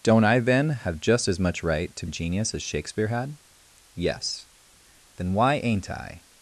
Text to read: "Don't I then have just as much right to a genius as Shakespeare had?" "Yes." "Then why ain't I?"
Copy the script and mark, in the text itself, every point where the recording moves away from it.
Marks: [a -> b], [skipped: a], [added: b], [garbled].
"Don't I then have just as much right to a genius as Shakespeare had?" "Yes." "Then why ain't I?"